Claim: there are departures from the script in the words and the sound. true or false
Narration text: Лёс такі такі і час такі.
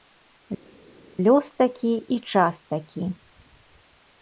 true